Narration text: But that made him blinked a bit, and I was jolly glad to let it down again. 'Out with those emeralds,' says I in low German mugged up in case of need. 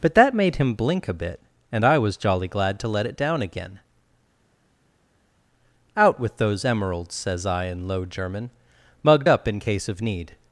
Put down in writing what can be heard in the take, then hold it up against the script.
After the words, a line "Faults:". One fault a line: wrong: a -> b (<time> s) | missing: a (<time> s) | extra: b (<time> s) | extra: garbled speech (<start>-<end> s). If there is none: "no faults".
But that made him blink a bit, and I was jolly glad to let it down again. 'Out with those emeralds,' says I in low German mugged up in case of need.
Faults:
wrong: blinked -> blink (0.7 s)